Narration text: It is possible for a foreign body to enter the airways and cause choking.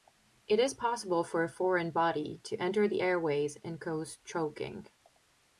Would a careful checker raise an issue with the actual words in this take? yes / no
no